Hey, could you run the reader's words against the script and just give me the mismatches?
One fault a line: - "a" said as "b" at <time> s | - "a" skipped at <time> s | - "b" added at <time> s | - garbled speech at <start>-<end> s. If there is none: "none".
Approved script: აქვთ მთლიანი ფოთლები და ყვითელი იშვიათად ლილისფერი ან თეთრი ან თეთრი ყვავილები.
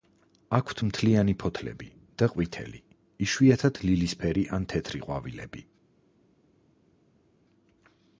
- "ან თეთრი" skipped at 5.1 s